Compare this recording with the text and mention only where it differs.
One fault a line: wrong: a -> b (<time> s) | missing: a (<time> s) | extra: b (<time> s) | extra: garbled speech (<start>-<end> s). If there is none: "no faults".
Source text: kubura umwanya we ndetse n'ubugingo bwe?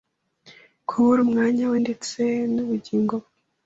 no faults